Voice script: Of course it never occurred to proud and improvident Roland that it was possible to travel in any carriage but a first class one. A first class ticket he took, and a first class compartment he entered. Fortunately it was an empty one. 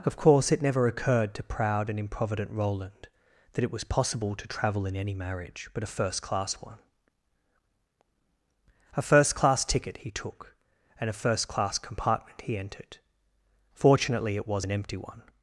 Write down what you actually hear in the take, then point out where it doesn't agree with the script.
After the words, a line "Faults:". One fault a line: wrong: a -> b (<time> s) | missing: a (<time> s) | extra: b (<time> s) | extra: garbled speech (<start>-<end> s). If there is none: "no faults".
Of course it never occurred to proud and improvident Roland that it was possible to travel in any marriage but a first class one. A first class ticket he took, and a first class compartment he entered. Fortunately it was an empty one.
Faults:
wrong: carriage -> marriage (5.1 s)